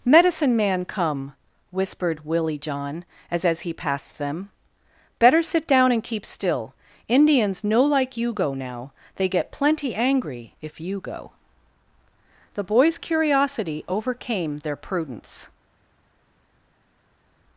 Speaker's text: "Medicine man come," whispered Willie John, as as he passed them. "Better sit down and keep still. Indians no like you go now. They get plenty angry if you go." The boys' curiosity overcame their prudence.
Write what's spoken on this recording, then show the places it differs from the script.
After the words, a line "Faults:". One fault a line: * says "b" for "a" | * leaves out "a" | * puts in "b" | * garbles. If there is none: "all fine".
"Medicine man come," whispered Willie John, as as he passed them. "Better sit down and keep still. Indians no like you go now. They get plenty angry if you go." The boys' curiosity overcame their prudence.
Faults:
all fine